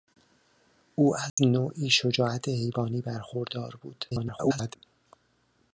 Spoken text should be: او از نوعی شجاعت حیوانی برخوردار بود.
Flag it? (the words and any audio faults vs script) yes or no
yes